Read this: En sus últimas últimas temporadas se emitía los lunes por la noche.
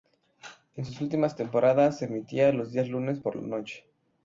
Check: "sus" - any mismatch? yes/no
no